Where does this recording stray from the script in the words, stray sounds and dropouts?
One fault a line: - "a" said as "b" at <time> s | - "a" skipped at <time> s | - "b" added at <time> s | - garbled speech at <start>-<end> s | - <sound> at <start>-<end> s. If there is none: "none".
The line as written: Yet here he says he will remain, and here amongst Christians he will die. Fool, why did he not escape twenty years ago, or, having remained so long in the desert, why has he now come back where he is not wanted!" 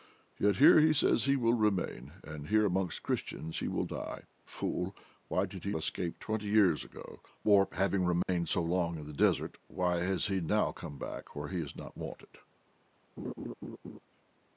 - "not" skipped at 5.8 s
- dropout at 8.2-8.3 s
- laugh at 13.2-14.0 s